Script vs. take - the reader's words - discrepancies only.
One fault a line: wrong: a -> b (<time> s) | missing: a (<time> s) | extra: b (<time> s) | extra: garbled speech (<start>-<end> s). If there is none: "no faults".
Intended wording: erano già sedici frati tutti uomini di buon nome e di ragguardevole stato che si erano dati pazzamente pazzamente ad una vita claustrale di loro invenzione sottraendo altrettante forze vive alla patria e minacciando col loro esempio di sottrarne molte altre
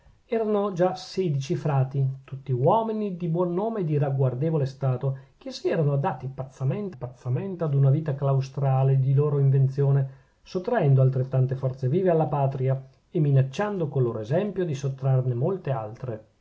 no faults